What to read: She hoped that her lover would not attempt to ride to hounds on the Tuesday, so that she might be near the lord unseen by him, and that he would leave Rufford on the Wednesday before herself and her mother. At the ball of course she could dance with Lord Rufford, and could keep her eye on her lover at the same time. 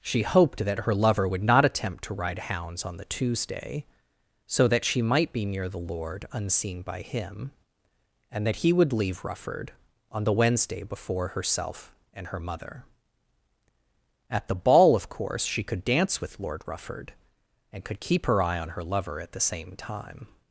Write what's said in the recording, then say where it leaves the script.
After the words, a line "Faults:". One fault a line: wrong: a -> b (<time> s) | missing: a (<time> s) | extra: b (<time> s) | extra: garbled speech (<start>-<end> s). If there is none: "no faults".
She hoped that her lover would not attempt to ride hounds on the Tuesday, so that she might be near the lord unseen by him, and that he would leave Rufford on the Wednesday before herself and her mother. At the ball of course she could dance with Lord Rufford, and could keep her eye on her lover at the same time.
Faults:
missing: to (2.4 s)